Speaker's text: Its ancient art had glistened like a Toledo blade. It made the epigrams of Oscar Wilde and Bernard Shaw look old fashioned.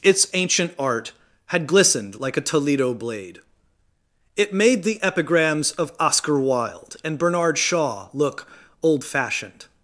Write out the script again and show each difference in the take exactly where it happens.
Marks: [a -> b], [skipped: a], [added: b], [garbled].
Its ancient art had glistened like a Toledo blade. It made the epigrams of Oscar Wilde and Bernard Shaw look old fashioned.